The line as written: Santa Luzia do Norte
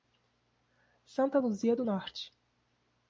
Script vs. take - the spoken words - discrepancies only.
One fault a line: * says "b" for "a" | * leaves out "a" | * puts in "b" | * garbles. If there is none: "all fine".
all fine